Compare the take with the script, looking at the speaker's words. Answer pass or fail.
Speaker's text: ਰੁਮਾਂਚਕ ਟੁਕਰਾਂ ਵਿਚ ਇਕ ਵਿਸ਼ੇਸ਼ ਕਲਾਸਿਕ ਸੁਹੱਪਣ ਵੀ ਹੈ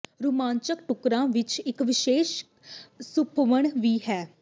fail